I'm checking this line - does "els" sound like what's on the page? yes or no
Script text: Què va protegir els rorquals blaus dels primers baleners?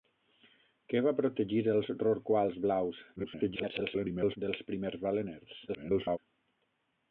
yes